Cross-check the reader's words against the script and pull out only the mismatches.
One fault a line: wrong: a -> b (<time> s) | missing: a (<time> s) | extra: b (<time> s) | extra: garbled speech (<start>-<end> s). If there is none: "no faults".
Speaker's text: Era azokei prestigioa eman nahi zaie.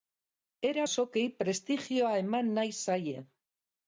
no faults